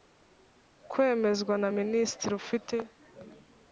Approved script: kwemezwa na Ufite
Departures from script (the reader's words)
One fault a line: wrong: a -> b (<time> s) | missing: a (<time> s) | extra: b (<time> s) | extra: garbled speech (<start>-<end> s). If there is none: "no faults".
extra: Minisitiri (1.8 s)